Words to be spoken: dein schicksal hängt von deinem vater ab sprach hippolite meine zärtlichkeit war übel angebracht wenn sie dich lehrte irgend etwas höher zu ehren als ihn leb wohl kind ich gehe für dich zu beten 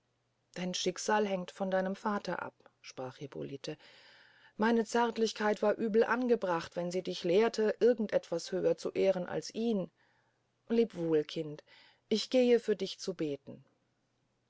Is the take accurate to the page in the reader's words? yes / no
yes